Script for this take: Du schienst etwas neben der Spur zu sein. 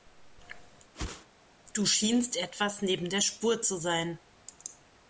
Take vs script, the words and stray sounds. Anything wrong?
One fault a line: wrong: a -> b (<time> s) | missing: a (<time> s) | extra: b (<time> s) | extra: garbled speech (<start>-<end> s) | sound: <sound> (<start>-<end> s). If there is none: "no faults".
sound: whoosh (0.9-1.3 s)